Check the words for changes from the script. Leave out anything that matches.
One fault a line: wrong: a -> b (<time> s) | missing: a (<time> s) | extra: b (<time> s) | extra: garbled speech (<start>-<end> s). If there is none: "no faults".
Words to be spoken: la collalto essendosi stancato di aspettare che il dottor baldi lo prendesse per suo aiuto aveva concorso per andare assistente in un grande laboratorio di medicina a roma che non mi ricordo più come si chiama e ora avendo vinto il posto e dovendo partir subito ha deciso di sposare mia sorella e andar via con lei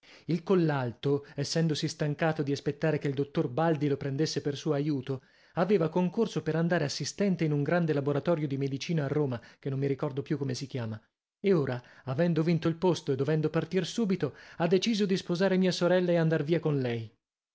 wrong: la -> il (0.2 s)